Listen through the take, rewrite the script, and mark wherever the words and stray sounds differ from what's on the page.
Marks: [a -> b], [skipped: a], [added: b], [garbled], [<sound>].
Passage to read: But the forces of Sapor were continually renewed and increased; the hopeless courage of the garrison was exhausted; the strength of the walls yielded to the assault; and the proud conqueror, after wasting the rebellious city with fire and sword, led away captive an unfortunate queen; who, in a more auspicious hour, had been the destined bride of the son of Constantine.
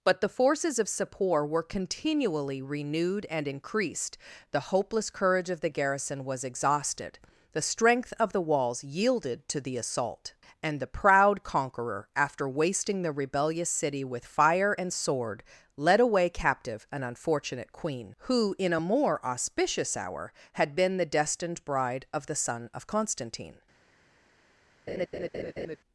But the forces of Sapor were continually renewed and increased; the hopeless courage of the garrison was exhausted; the strength of the walls yielded to the assault; and the proud conqueror, after wasting the rebellious city with fire and sword, led away captive an unfortunate queen; who, in a more auspicious hour, had been the destined bride of the son of Constantine. [laugh]